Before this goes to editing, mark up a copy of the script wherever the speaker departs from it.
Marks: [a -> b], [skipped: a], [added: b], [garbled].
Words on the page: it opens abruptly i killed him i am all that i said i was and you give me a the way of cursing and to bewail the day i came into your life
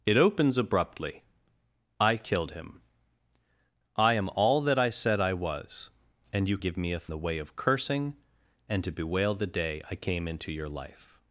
it opens abruptly i killed him i am all that i said i was and you give me a the way of cursing and to bewail the day i came into your life